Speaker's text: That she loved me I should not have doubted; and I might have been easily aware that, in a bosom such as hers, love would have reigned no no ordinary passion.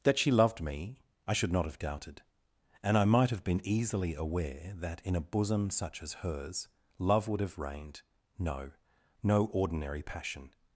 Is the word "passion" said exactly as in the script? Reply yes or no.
yes